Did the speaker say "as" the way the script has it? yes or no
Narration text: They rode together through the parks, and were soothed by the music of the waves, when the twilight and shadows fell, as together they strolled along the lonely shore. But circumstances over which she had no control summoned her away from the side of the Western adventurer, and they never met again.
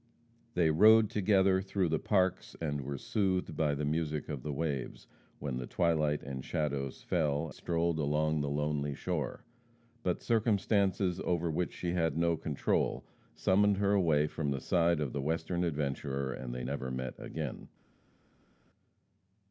no